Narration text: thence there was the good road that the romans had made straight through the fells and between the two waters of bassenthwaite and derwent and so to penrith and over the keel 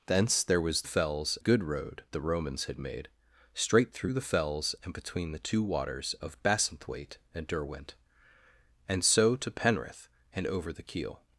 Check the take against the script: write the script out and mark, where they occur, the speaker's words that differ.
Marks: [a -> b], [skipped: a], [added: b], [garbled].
thence there was [the -> fells] good road [skipped: that] the romans had made straight through the fells and between the two waters of bassenthwaite and derwent and so to penrith and over the keel